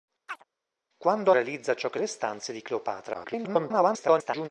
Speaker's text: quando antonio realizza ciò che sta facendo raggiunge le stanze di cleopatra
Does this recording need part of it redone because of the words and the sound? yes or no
yes